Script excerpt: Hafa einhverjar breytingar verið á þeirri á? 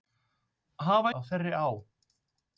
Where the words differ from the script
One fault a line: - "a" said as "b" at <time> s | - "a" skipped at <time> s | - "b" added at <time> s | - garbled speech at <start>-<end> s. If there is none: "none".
- "einhverjar breytingar verið" skipped at 1.1 s